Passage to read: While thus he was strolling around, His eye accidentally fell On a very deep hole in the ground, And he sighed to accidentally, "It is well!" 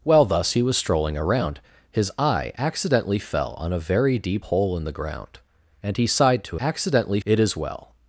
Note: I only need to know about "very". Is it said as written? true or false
true